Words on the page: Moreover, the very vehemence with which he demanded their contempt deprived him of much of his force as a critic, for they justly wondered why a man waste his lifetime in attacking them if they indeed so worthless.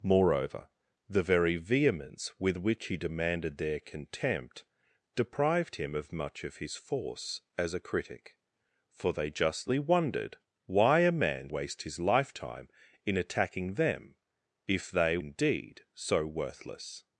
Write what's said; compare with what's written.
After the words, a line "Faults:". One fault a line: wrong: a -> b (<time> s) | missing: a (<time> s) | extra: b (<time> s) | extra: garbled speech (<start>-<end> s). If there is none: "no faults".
Moreover, the very vehemence with which he demanded their contempt deprived him of much of his force as a critic, for they justly wondered why a man waste his lifetime in attacking them if they indeed so worthless.
Faults:
no faults